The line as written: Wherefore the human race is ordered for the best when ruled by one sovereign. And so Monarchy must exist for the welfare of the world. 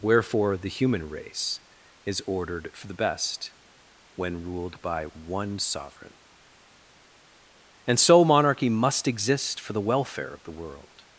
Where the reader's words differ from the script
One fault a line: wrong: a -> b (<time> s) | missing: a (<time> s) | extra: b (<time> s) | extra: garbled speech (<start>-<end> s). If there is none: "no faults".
no faults